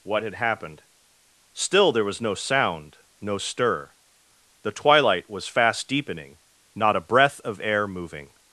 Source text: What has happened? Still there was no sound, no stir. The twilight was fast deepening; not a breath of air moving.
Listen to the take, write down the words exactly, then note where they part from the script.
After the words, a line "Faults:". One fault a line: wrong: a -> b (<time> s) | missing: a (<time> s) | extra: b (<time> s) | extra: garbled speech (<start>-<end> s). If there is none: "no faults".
What had happened? Still there was no sound, no stir. The twilight was fast deepening; not a breath of air moving.
Faults:
wrong: has -> had (0.2 s)